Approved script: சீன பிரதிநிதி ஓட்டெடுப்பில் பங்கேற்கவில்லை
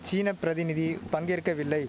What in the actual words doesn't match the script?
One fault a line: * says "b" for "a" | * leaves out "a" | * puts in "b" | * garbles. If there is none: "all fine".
* leaves out "ஓட்டெடுப்பில்"